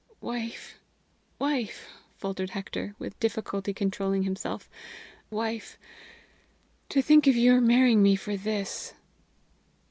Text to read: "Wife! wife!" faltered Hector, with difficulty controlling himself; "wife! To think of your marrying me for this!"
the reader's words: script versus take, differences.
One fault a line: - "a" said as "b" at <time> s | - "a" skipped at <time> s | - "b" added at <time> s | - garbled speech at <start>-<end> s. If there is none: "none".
none